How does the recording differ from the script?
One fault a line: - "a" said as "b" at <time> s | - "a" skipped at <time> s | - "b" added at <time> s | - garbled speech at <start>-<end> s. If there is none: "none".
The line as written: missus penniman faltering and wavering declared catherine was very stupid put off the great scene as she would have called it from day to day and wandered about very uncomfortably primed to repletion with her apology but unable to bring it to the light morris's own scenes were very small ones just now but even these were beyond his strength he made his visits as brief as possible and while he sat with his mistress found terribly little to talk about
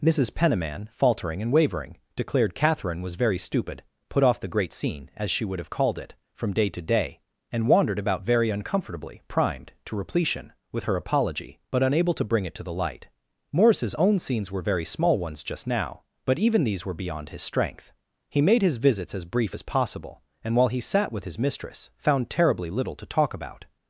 none